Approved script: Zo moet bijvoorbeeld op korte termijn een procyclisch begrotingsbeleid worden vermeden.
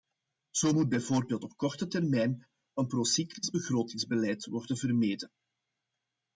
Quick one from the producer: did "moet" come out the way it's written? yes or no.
yes